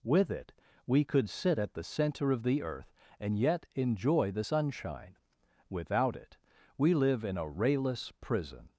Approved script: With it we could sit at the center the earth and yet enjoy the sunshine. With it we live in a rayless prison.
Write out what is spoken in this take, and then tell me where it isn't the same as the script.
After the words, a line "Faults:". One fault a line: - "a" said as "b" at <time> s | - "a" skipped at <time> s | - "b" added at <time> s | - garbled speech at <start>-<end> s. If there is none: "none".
With it we could sit at the center of the earth and yet enjoy the sunshine. Without it we live in a rayless prison.
Faults:
- "of" added at 2.3 s
- "With" said as "Without" at 5.7 s